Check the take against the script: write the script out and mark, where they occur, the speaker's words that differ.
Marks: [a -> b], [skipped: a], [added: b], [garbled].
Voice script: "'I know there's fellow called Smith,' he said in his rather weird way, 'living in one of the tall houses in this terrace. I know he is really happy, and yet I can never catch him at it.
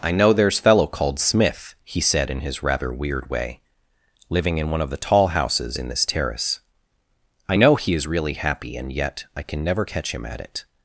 "'I know there's fellow called Smith,' he said in his rather weird way, 'living in one of the tall houses in this terrace. I know he is really happy, and yet I can never catch him at it.